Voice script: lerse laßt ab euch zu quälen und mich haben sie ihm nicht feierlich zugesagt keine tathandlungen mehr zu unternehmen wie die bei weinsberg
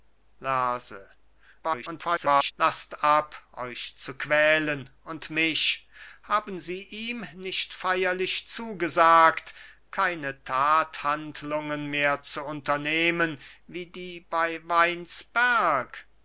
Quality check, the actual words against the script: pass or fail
fail